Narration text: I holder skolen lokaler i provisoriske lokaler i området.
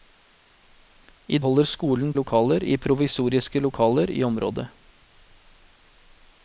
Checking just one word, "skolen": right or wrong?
right